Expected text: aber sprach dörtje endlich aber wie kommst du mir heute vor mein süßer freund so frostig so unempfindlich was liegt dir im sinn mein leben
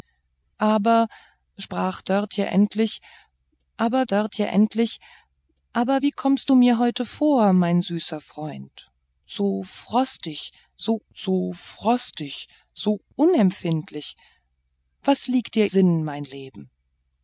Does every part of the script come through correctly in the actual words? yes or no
no